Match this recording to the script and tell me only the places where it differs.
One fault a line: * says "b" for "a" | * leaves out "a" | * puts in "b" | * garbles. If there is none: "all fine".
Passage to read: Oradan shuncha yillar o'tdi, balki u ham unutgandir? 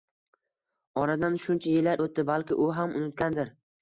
all fine